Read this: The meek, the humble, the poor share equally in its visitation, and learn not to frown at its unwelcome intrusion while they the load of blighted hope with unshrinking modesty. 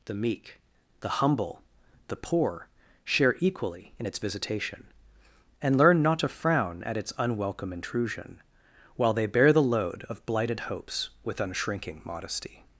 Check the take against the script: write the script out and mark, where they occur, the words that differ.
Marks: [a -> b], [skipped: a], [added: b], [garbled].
The meek, the humble, the poor share equally in its visitation, and learn not to frown at its unwelcome intrusion while they [added: bear] the load of blighted [hope -> hopes] with unshrinking modesty.